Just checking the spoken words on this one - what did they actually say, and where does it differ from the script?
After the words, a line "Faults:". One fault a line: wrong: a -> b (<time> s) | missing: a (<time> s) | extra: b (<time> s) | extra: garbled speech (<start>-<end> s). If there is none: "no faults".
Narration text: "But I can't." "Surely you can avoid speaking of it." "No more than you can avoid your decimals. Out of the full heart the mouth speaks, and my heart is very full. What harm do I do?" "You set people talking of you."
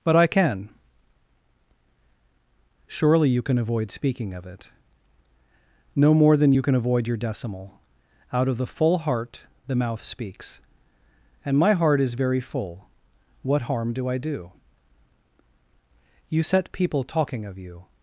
"But I can." "Surely you can avoid speaking of it." "No more than you can avoid your decimal. Out of the full heart the mouth speaks, and my heart is very full. What harm do I do?" "You set people talking of you."
Faults:
wrong: can't -> can (0.3 s)
wrong: decimals -> decimal (7.2 s)